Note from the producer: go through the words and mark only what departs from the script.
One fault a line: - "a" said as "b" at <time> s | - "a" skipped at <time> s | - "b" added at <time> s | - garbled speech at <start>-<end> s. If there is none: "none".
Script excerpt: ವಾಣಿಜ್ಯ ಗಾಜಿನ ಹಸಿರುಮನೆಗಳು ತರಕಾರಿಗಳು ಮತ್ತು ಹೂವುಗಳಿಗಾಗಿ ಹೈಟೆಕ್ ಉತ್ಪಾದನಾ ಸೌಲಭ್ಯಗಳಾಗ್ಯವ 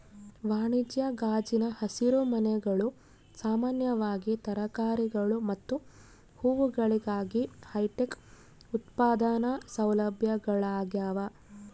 - "ಸಾಮಾನ್ಯವಾಗಿ" added at 3.4 s